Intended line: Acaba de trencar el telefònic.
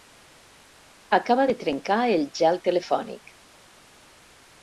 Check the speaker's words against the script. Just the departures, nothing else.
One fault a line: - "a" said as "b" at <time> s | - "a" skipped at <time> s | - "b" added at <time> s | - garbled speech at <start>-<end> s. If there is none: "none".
- "gel" added at 2.4 s